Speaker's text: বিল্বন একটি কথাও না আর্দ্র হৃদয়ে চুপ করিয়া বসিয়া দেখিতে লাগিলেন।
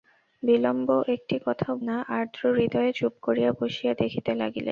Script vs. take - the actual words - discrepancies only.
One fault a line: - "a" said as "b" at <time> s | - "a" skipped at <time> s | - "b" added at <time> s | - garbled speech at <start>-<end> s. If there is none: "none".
none